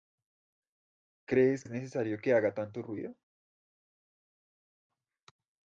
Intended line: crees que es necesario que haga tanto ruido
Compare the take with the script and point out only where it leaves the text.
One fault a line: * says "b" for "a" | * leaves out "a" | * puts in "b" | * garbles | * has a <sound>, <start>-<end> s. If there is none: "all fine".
* leaves out "que"